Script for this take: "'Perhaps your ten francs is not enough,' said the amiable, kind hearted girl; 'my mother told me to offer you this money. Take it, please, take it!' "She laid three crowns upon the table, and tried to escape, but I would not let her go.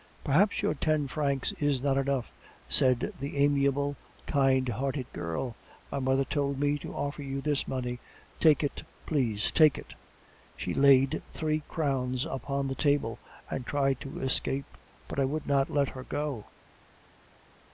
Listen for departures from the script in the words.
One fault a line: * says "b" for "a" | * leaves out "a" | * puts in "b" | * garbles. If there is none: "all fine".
all fine